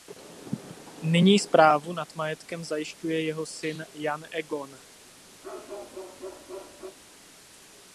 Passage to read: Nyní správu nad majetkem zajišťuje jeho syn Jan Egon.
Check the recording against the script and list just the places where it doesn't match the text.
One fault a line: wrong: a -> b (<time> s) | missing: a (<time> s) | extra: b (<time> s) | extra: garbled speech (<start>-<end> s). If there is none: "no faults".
no faults